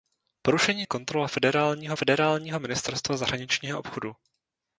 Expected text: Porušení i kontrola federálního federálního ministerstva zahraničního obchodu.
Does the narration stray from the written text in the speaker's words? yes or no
no